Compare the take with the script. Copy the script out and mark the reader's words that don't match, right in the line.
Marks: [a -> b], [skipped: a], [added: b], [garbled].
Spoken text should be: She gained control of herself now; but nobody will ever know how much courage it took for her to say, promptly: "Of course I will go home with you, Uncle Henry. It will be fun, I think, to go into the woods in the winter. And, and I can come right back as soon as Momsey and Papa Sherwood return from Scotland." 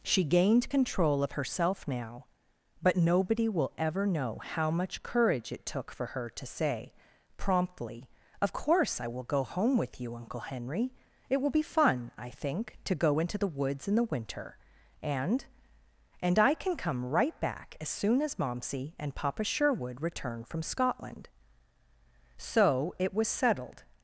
She gained control of herself now; but nobody will ever know how much courage it took for her to say, promptly: "Of course I will go home with you, Uncle Henry. It will be fun, I think, to go into the woods in the winter. And, and I can come right back as soon as Momsey and Papa Sherwood return from Scotland." [added: So it was settled]